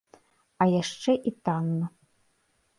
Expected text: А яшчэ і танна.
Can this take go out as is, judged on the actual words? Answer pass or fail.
pass